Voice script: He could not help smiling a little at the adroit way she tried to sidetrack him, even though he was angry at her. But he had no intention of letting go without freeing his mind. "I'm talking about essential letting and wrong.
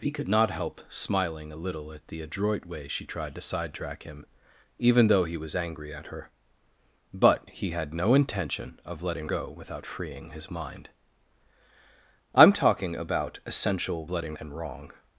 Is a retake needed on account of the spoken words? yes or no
no